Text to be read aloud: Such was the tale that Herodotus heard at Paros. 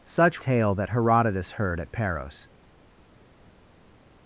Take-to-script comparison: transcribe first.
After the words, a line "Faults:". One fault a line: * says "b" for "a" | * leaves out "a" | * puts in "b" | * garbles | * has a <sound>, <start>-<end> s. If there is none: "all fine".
Such tale that Herodotus heard at Paros.
Faults:
* leaves out "was the"